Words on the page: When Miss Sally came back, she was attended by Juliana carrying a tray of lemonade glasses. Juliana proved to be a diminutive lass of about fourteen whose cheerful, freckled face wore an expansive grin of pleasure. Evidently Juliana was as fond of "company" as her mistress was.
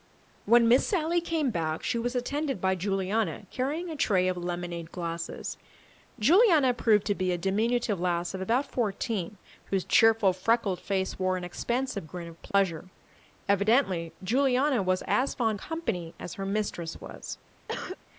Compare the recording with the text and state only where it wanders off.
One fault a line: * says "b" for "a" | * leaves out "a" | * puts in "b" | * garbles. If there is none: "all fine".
* leaves out "of"